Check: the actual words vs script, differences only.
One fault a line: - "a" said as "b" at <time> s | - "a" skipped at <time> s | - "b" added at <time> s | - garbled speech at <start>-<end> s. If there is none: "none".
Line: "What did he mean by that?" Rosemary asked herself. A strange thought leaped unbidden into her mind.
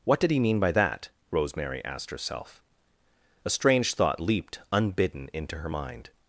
none